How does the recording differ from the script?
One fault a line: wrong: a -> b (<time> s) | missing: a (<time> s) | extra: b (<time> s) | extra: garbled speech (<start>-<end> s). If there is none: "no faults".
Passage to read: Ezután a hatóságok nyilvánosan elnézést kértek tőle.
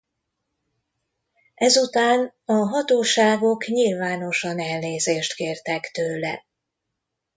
no faults